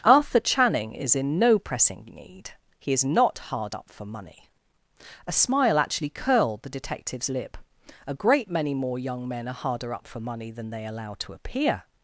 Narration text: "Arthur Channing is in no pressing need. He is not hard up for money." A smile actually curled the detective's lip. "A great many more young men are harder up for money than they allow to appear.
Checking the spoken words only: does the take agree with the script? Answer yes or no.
yes